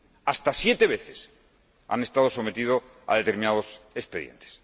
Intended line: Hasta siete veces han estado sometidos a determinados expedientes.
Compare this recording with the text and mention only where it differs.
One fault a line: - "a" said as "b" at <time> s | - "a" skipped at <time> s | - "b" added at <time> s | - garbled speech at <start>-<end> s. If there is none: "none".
none